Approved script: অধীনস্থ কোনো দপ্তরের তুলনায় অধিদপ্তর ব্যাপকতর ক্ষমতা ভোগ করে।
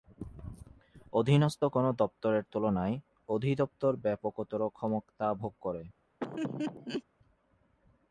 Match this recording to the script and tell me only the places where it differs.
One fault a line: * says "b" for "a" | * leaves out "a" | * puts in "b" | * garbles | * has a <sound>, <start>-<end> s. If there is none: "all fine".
* has a laugh, 6.2-7.0 s